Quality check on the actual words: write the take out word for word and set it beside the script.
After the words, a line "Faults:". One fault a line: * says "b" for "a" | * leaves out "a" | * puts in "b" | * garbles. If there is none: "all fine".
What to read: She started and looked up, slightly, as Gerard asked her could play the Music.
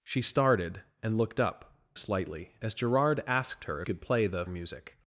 She started and looked up, slightly, as Gerard asked her could play the Music.
Faults:
all fine